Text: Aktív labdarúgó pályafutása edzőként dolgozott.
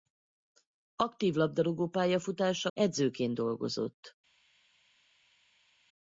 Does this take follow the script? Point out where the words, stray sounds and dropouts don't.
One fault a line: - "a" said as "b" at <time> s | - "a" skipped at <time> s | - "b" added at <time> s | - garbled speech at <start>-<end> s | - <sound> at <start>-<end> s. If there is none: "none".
none